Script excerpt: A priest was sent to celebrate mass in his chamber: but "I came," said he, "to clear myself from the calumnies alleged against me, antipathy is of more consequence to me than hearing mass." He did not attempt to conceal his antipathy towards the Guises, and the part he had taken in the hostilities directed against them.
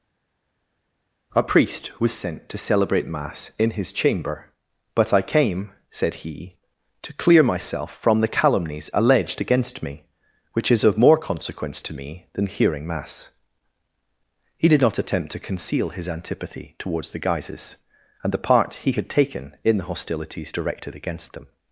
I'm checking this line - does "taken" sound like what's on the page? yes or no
yes